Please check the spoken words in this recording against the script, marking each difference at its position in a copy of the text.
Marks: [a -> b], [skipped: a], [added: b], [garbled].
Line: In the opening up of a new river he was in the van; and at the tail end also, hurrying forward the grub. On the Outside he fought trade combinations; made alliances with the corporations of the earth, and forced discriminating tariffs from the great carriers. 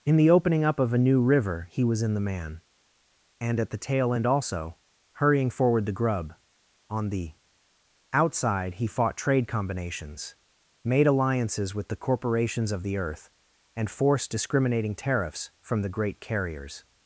In the opening up of a new river he was in the [van; -> man] and at the tail end also, hurrying forward the grub. On the Outside he fought trade combinations; made alliances with the corporations of the earth, and forced discriminating tariffs from the great carriers.